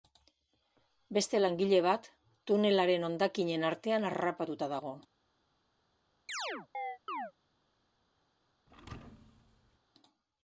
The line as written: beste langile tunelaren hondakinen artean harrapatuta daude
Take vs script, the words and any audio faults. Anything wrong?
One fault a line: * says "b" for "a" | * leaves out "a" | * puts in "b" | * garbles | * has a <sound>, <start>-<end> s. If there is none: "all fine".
* puts in "bat"
* says "dago" for "daude"
* has a chirp, 6.3-7.3 s
* has a thud, 8.7-9.8 s